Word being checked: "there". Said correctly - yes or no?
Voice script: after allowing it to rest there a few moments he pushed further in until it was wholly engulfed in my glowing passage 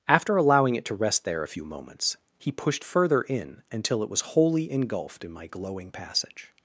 yes